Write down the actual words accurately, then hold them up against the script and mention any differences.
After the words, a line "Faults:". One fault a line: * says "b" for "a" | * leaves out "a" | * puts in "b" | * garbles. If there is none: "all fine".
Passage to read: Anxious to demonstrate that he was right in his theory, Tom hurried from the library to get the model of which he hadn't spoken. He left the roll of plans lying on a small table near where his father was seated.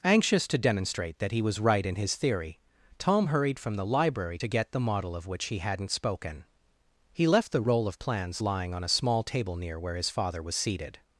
Anxious to demonstrate that he was right in his theory, Tom hurried from the library to get the model of which he hadn't spoken. He left the roll of plans lying on a small table near where his father was seated.
Faults:
all fine